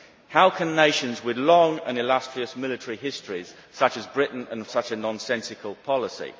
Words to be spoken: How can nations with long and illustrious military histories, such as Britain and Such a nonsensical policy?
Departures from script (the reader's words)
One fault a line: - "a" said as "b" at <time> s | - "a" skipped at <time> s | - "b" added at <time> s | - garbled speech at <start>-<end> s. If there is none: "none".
none